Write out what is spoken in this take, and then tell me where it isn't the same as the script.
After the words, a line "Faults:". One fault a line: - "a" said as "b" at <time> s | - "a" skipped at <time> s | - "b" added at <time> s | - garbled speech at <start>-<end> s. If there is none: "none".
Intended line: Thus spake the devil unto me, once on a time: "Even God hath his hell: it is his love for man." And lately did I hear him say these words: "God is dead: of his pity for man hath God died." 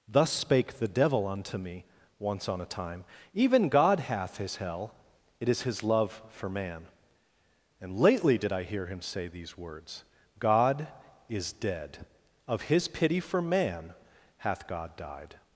Thus spake the devil unto me, once on a time: "Even God hath his hell: it is his love for man." And lately did I hear him say these words: "God is dead: of his pity for man hath God died."
Faults:
none